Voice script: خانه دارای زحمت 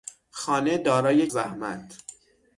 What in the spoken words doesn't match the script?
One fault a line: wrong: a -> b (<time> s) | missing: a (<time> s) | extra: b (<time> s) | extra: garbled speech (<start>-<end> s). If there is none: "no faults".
no faults